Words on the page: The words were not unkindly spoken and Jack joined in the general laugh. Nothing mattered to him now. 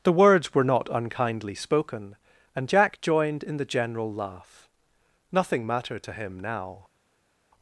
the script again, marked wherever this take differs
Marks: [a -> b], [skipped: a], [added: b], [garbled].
The words were not unkindly spoken and Jack joined in the general laugh. Nothing mattered to him now.